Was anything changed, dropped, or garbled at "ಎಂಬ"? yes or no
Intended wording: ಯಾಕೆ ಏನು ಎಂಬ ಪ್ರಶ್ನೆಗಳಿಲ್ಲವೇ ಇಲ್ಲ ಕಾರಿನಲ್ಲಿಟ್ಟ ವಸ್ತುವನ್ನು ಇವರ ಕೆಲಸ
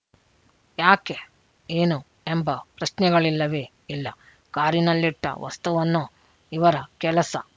no